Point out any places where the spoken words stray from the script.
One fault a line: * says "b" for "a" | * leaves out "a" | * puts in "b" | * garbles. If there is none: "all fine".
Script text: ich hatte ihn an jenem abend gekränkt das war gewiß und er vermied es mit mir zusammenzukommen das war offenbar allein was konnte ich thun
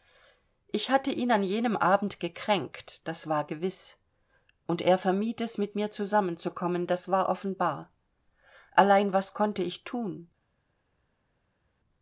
all fine